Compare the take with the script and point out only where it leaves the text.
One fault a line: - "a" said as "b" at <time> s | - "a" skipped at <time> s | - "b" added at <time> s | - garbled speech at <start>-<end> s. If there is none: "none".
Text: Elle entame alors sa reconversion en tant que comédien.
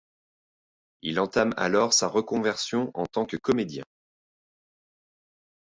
- "Elle" said as "Il" at 1.0 s